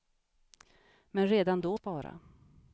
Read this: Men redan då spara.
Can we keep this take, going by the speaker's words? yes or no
yes